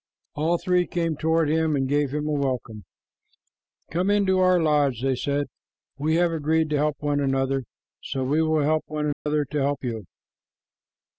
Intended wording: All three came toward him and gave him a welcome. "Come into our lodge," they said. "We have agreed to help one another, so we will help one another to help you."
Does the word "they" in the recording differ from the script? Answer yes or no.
no